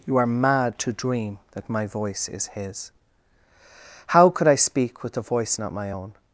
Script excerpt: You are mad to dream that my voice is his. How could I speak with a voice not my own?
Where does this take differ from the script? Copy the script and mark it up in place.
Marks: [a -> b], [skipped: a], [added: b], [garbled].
You are mad to dream that my voice is his. How could I speak with a voice not my own?